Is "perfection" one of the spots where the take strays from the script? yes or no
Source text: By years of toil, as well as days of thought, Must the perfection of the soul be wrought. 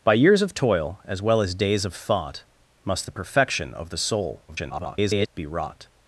no